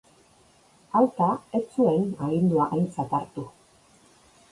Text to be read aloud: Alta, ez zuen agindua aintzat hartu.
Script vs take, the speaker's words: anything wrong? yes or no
no